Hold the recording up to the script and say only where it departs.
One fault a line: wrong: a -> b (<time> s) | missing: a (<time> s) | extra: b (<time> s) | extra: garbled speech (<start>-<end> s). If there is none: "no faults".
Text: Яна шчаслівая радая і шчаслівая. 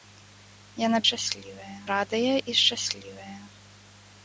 no faults